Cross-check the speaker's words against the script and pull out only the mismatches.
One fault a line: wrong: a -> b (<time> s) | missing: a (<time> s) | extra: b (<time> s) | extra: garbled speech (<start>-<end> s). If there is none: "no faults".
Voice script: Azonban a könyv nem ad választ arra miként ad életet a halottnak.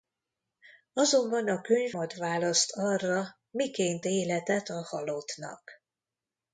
missing: nem (1.9 s)
missing: ad (4.1 s)